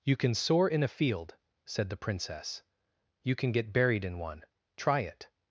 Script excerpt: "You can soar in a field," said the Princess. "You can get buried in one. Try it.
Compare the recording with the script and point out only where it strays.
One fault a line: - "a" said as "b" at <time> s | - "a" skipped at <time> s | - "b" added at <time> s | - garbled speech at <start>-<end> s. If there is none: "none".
none